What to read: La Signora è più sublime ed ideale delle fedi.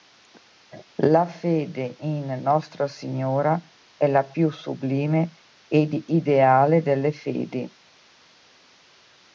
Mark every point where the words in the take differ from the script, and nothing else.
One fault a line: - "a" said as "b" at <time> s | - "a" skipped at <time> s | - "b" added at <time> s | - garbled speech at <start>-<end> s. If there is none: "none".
- "fede in Nostra" added at 1.3 s
- "la" added at 4.1 s